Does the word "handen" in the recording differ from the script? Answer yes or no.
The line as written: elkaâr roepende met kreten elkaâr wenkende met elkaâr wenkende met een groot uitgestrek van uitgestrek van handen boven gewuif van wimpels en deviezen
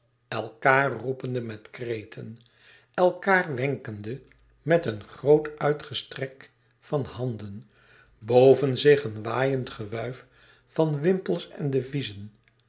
yes